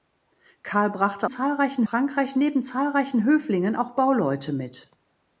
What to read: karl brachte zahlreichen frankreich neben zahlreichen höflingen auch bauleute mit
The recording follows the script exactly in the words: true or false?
true